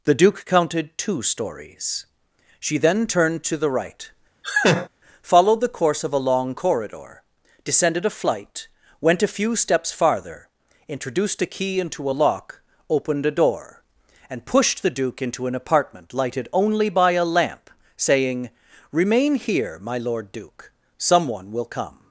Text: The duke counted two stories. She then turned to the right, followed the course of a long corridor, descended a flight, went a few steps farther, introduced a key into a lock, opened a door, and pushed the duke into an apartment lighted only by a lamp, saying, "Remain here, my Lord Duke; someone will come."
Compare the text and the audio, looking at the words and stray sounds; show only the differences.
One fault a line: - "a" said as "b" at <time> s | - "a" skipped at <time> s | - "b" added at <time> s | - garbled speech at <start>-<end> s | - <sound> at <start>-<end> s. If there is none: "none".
- laugh at 4.4-4.9 s